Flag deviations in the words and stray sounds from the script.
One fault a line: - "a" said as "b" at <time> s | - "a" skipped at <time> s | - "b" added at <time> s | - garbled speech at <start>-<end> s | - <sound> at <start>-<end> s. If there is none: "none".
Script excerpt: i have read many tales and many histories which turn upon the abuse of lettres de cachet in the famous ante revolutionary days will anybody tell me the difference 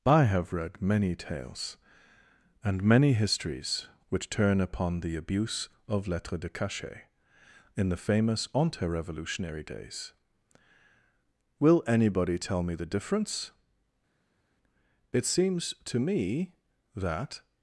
- "it seems to me that" added at 15.1 s